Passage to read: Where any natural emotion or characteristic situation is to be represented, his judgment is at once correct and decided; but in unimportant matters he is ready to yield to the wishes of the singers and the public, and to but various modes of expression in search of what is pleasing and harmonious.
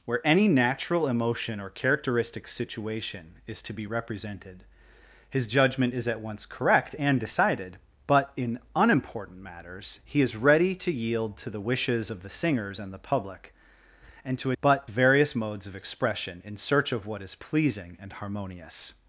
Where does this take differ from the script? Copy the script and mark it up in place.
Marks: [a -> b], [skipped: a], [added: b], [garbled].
Where any natural emotion or characteristic situation is to be represented, his judgment is at once correct and decided; but in unimportant matters he is ready to yield to the wishes of the singers and the public, and to but various modes of expression in search of what is pleasing and harmonious.